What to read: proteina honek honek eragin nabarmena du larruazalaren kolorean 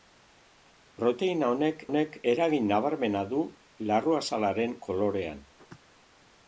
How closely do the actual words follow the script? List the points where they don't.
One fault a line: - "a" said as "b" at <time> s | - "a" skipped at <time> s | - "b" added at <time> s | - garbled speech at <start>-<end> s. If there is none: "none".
none